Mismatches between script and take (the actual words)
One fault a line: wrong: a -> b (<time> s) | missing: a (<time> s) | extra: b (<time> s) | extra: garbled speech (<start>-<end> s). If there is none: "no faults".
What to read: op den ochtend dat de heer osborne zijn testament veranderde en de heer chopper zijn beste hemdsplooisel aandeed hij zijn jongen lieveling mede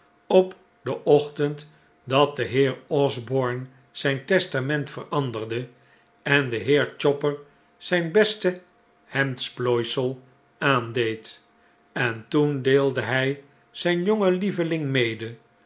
extra: en toen deelde (11.9 s)